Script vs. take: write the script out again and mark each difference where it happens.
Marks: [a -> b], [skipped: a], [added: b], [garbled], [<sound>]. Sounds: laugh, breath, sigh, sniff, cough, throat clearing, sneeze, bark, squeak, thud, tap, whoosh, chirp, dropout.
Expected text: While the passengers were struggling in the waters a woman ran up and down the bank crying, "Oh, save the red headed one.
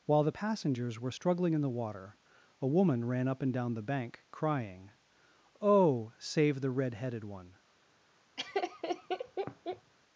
While the passengers were struggling in the [waters -> water] a woman ran up and down the bank crying, "Oh, save the red headed one. [laugh]